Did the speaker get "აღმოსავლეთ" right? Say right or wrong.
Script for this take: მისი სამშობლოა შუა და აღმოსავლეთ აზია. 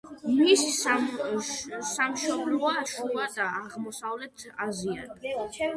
right